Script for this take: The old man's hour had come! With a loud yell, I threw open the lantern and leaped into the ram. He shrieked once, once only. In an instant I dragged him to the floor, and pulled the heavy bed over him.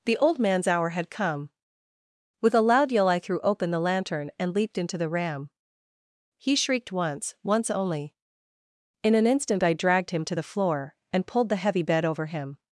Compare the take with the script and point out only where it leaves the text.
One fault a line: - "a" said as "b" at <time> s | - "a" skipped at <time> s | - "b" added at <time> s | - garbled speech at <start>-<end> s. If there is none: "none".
none